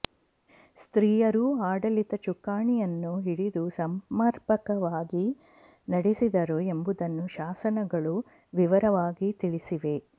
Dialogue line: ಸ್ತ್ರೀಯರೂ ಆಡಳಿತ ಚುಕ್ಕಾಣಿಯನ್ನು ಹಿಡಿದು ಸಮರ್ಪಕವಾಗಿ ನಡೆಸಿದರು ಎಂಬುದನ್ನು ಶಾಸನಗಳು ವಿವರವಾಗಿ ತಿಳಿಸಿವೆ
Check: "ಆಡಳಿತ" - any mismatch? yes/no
no